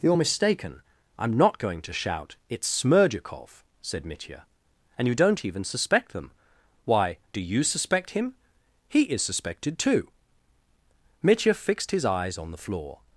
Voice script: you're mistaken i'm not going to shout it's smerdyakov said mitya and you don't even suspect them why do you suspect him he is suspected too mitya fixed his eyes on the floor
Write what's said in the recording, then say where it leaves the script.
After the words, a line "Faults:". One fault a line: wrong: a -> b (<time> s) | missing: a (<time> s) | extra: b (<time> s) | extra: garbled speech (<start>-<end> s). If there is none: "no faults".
you're mistaken i'm not going to shout it's smerdyakov said mitya and you don't even suspect them why do you suspect him he is suspected too mitya fixed his eyes on the floor
Faults:
no faults